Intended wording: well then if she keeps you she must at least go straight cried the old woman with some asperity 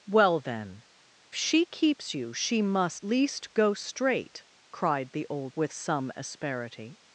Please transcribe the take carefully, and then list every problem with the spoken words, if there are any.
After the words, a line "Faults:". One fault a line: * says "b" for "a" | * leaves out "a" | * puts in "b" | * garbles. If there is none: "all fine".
well then she keeps you she must least go straight cried the old with some asperity
Faults:
* leaves out "if"
* leaves out "at"
* leaves out "woman"